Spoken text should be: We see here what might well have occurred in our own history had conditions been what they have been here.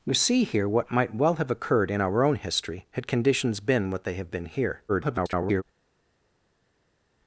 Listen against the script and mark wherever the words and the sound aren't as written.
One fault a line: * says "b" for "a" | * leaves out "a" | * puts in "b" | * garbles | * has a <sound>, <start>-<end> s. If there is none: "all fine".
* garbles